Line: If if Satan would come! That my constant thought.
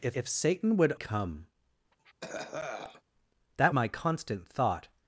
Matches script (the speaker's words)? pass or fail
pass